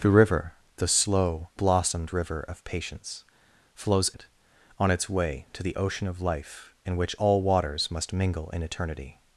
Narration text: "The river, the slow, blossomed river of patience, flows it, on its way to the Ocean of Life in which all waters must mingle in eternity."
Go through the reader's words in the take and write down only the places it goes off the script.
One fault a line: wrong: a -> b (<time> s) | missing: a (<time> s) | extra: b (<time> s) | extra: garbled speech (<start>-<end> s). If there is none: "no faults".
no faults